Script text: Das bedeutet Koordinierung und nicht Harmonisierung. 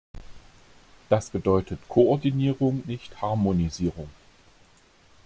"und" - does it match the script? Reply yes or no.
no